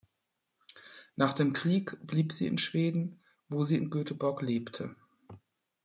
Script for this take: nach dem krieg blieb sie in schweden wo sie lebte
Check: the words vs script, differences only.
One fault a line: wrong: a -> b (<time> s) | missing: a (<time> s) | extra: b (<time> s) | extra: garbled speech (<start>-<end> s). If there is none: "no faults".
extra: in göteborg (3.8 s)